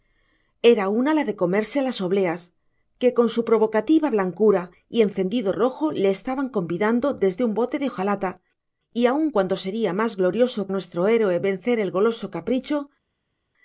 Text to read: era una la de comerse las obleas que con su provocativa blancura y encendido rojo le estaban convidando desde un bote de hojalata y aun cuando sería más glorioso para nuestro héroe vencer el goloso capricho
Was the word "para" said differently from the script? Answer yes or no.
yes